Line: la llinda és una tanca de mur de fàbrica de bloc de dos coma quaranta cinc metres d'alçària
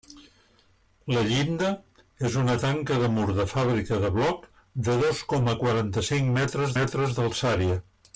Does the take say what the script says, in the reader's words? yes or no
no